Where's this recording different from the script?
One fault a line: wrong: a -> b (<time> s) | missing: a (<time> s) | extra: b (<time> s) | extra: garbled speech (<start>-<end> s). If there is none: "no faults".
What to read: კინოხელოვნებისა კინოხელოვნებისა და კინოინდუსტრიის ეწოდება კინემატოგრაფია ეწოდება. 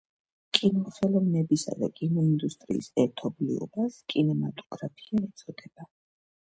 missing: კინოხელოვნებისა (1.8 s)
wrong: ეწოდება -> ერთობლიობას (3.0 s)